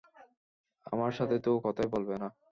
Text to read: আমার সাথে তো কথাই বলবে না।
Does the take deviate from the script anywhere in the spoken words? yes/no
no